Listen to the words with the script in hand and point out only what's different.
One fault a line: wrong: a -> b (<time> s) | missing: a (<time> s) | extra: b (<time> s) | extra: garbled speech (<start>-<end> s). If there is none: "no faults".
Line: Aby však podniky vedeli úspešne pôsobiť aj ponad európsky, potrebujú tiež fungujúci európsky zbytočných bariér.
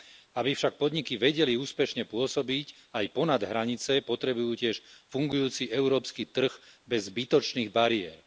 wrong: európsky -> hranice (3.4 s)
extra: trh bez (6.3 s)